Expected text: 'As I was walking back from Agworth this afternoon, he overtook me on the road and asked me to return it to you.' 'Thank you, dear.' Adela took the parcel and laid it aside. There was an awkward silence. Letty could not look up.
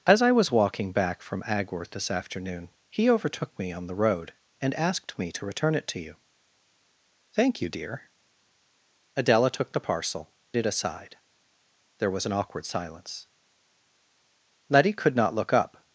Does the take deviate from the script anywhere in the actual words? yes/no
yes